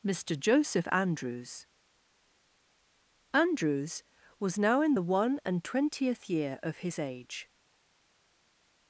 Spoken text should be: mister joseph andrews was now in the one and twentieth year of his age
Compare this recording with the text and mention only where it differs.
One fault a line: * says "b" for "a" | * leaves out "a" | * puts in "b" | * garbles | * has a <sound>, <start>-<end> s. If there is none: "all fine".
* puts in "andrews"